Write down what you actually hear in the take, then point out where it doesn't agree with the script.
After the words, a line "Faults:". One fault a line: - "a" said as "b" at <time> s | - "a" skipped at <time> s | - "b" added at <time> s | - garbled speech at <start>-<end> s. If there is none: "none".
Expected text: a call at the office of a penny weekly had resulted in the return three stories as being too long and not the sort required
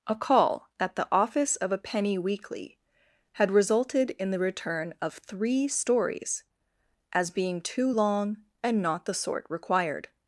a call at the office of a penny weekly had resulted in the return of three stories as being too long and not the sort required
Faults:
- "of" added at 5.0 s